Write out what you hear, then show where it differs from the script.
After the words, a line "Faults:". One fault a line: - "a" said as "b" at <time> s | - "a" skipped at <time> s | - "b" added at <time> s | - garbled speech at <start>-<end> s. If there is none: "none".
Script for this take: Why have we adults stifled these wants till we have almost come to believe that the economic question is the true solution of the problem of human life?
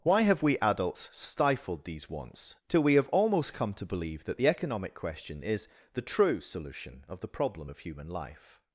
Why have we adults stifled these wants till we have almost come to believe that the economic question is the true solution of the problem of human life?
Faults:
none